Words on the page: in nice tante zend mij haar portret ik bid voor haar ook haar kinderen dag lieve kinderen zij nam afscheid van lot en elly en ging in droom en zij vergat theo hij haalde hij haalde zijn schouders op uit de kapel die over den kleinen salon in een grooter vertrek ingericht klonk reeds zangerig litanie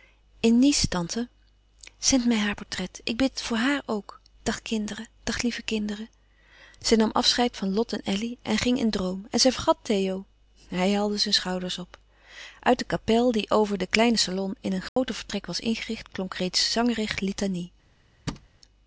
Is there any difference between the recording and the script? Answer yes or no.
yes